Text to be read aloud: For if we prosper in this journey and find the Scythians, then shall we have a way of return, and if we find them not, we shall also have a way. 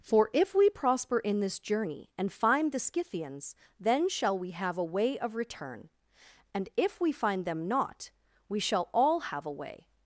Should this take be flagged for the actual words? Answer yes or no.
yes